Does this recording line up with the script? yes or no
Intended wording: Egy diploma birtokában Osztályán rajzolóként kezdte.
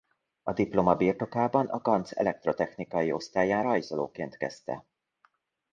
no